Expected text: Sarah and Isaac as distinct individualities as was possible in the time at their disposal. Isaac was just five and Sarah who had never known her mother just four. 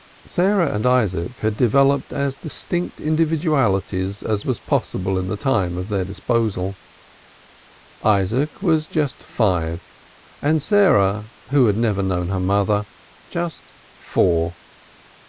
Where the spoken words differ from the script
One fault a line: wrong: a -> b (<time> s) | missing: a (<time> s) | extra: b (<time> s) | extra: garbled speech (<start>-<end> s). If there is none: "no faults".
extra: had developed (1.4 s)